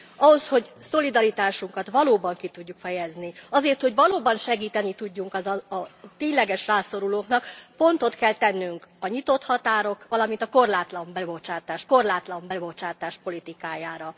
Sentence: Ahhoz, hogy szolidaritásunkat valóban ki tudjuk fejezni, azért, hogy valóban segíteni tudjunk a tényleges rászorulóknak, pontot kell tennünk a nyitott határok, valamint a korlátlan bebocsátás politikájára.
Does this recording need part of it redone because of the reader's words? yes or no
yes